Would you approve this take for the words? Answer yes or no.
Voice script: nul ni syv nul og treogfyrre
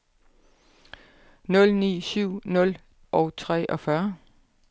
yes